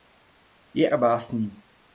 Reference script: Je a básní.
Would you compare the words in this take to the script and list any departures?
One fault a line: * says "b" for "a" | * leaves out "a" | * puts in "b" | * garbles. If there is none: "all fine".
all fine